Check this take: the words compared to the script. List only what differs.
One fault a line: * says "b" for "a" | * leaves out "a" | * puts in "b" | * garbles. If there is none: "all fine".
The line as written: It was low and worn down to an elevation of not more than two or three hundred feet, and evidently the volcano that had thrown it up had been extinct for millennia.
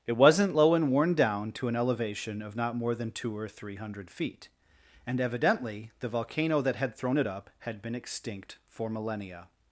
* says "wasn't" for "was"